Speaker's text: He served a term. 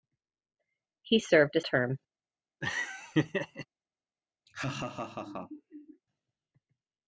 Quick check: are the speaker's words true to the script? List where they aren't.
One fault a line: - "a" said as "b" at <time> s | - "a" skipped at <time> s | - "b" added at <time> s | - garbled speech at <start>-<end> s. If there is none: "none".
none